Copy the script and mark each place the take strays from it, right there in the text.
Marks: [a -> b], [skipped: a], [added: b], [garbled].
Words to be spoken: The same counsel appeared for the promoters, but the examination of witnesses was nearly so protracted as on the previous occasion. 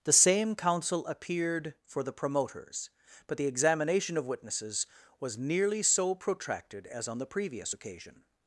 The same counsel appeared for the promoters, but the examination of witnesses was nearly so protracted as on the previous occasion.